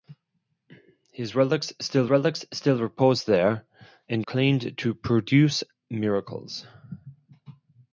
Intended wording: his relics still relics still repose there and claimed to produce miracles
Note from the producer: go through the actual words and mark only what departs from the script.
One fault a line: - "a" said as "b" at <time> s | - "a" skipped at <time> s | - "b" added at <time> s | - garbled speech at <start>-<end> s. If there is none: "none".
none